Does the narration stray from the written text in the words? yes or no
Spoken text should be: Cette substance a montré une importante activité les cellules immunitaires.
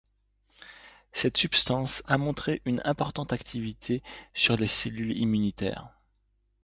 yes